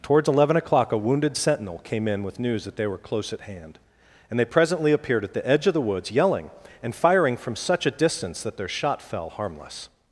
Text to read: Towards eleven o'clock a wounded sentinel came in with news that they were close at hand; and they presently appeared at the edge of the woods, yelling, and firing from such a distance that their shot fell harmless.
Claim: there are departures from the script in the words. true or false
false